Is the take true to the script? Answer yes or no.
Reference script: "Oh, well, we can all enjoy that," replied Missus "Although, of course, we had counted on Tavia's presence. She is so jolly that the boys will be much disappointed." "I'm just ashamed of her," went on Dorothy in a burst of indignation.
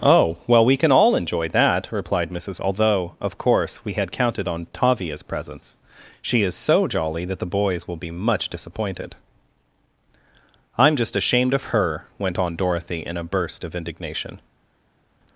yes